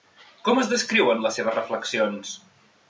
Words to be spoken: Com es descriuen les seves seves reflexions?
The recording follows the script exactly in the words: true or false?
false